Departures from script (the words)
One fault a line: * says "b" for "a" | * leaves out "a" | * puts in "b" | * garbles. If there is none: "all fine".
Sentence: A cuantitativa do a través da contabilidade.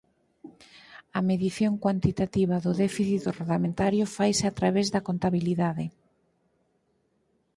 * puts in "medición"
* puts in "déficit orzamentario faise"